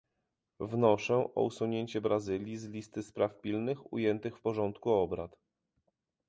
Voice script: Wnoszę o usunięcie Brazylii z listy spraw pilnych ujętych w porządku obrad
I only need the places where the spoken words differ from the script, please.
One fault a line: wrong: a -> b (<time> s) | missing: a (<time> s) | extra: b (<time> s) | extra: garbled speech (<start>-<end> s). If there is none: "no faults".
no faults